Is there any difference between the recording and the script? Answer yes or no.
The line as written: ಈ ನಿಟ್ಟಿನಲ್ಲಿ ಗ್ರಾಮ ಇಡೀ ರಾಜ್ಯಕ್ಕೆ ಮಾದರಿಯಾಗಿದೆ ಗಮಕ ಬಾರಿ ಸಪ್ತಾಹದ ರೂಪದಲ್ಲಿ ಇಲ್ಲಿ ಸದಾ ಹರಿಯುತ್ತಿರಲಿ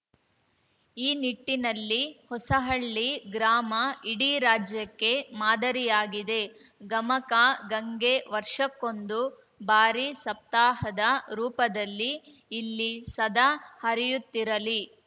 yes